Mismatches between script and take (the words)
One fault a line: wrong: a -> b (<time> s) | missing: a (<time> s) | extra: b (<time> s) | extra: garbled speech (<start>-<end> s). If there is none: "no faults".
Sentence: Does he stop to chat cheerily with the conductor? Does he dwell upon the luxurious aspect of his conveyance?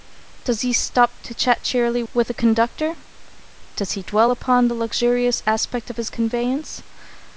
no faults